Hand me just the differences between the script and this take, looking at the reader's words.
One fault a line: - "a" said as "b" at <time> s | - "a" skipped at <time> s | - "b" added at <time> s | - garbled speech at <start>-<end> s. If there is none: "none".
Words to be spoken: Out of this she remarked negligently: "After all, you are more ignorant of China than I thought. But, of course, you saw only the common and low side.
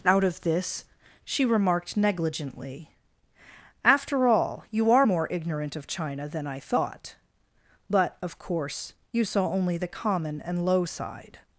none